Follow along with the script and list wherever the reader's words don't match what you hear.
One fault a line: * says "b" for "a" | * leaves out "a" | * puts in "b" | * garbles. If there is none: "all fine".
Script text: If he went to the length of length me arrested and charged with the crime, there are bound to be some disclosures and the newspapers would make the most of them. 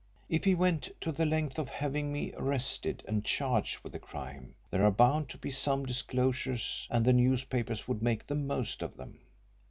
* says "having" for "length"